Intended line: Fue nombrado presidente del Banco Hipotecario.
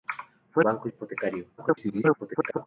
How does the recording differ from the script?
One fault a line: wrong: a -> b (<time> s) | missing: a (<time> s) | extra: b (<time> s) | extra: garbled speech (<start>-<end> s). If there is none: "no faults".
missing: nombrado presidente del (0.7 s)
extra: garbled speech (1.6-2.7 s)